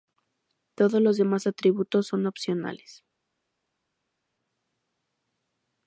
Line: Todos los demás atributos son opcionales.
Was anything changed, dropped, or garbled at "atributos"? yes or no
no